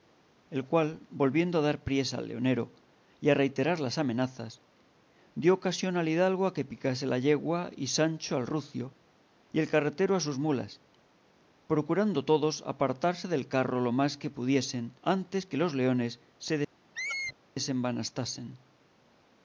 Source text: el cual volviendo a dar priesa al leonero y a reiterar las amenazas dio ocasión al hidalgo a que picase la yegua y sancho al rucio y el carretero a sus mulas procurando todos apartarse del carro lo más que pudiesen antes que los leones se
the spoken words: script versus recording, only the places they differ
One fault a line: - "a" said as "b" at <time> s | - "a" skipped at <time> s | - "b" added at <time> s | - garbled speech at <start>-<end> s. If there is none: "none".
none